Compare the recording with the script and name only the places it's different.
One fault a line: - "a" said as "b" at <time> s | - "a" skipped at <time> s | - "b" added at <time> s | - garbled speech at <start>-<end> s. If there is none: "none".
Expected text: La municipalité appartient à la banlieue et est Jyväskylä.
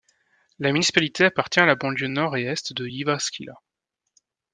- "nord" added at 2.0 s
- "de" added at 2.7 s